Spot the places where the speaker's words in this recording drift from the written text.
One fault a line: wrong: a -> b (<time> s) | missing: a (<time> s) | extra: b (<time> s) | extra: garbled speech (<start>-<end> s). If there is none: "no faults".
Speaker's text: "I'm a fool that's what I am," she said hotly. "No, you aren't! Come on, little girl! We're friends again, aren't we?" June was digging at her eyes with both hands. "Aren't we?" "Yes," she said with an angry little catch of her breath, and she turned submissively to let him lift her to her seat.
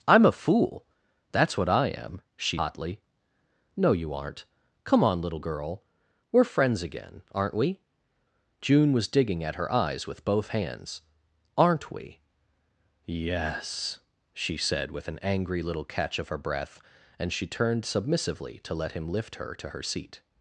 missing: said (2.6 s)